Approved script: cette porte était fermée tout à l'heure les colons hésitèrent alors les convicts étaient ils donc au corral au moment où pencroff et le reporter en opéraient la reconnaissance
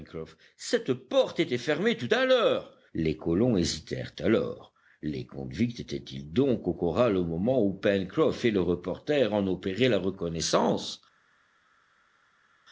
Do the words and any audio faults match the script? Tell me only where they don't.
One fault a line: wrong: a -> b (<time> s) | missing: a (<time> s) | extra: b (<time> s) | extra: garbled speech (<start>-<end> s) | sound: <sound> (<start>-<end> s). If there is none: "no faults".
no faults